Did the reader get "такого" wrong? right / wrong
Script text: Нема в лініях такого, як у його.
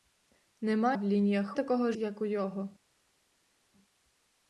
right